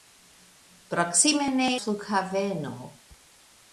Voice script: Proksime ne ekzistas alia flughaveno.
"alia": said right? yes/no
no